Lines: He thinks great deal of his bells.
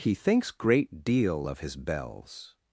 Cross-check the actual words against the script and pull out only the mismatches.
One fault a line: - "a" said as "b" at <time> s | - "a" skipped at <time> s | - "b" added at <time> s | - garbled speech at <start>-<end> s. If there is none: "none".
none